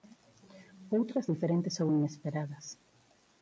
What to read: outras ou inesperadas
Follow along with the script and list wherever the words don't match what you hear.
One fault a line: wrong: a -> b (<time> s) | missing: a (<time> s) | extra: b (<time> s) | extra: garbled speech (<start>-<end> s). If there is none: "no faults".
extra: diferentes (1.3 s)